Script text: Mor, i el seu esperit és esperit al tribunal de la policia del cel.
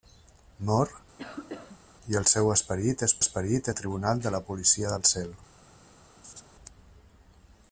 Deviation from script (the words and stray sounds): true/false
true